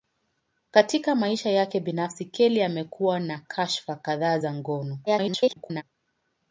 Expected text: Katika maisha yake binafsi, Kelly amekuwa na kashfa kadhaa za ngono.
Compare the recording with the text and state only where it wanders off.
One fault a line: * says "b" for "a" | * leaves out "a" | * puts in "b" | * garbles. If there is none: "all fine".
* garbles